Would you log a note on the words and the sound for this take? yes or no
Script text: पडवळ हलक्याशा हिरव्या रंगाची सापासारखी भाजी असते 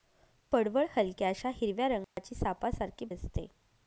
yes